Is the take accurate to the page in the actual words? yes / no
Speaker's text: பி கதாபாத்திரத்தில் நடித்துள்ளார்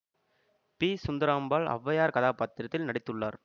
no